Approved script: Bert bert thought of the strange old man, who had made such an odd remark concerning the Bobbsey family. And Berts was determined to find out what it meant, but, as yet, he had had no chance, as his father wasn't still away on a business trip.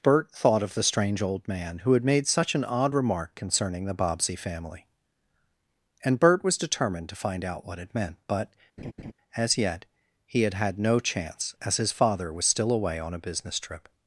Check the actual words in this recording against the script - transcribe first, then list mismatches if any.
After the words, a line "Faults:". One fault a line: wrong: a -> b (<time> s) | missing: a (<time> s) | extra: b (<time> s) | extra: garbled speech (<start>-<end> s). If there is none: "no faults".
Bert thought of the strange old man, who had made such an odd remark concerning the Bobbsey family. And Bert was determined to find out what it meant, but, as yet, he had had no chance, as his father was still away on a business trip.
Faults:
missing: bert (0.3 s)
wrong: Berts -> Bert (6.2 s)
wrong: wasn't -> was (12.3 s)